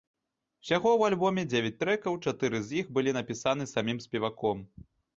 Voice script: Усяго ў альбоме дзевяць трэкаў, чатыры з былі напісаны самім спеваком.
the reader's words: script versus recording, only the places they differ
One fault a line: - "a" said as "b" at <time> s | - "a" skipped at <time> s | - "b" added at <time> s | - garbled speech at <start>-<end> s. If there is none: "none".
- "іх" added at 2.8 s